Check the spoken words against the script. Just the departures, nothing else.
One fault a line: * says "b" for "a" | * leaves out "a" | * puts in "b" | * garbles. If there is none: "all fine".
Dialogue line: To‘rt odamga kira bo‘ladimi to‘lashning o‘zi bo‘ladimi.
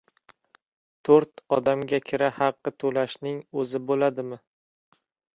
* says "haqi" for "bo‘ladimi"